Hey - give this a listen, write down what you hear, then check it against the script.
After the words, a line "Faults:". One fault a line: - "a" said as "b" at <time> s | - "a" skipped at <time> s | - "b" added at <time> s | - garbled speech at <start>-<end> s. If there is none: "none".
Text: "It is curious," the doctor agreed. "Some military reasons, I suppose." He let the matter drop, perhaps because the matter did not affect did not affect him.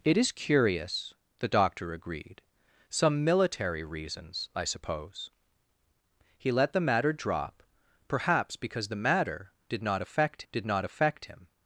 "It is curious," the doctor agreed. "Some military reasons, I suppose." He let the matter drop, perhaps because the matter did not affect did not affect him.
Faults:
none